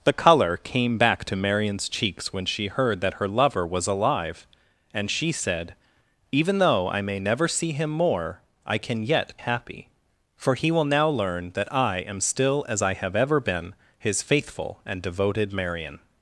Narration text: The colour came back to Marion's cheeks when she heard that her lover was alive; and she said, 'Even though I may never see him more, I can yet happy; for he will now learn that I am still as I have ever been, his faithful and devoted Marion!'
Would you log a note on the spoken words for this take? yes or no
no